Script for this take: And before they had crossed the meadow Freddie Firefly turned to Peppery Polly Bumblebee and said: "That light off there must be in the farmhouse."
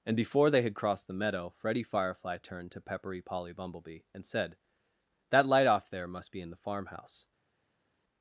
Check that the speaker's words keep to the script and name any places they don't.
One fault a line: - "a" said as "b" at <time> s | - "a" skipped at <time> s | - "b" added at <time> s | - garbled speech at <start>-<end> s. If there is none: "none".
none